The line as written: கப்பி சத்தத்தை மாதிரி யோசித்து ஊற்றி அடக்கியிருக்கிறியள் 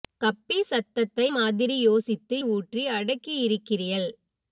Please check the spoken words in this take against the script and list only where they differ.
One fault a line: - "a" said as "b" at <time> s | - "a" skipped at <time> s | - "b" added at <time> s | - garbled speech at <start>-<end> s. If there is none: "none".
none